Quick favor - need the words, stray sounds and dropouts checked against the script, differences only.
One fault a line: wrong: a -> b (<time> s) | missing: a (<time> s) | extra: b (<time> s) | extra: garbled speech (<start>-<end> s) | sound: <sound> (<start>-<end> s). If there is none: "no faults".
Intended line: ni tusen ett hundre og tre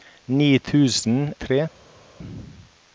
missing: ett hundre og (1.3 s)